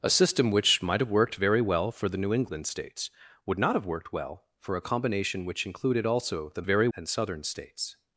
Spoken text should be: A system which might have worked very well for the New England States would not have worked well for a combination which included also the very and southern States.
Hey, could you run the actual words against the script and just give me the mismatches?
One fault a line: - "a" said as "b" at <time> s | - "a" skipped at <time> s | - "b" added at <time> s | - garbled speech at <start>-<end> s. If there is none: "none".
none